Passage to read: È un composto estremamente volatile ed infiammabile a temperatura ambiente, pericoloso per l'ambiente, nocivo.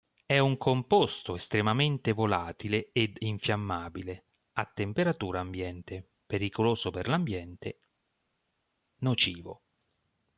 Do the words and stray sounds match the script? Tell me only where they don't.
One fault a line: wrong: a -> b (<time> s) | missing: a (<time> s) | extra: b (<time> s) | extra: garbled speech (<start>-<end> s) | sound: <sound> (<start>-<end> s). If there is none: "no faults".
no faults